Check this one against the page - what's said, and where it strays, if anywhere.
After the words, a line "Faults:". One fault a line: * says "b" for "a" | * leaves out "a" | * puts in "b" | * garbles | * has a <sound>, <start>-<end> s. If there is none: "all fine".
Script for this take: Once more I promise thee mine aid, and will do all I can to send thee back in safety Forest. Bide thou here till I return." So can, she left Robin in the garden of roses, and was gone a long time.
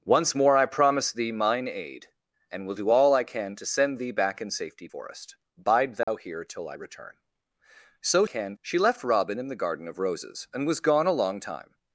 Once more I promise thee mine aid, and will do all I can to send thee back in safety Forest. Bide thou here till I return." So can, she left Robin in the garden of roses, and was gone a long time.
Faults:
* has a dropout, 6.0-6.1 s